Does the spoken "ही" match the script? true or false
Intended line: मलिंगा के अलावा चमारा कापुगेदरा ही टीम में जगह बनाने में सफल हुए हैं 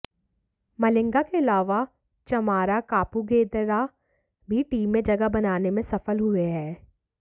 false